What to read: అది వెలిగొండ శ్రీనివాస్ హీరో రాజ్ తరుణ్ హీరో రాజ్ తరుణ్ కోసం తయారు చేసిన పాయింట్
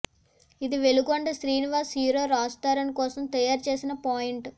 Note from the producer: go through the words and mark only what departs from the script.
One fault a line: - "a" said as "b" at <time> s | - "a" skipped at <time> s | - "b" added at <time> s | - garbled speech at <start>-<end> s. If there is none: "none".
- "అది" said as "ఇది" at 0.6 s
- "హీరో రాజ్ తరుణ్" skipped at 2.9 s